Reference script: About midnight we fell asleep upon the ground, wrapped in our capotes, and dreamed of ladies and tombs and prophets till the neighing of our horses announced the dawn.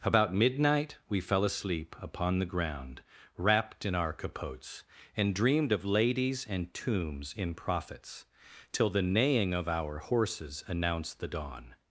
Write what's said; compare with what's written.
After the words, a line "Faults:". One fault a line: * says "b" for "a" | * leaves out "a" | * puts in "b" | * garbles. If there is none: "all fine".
About midnight we fell asleep upon the ground, wrapped in our capotes, and dreamed of ladies and tombs in prophets till the neighing of our horses announced the dawn.
Faults:
* says "in" for "and"